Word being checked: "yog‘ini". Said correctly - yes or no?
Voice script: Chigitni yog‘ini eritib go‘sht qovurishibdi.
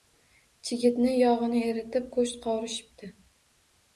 yes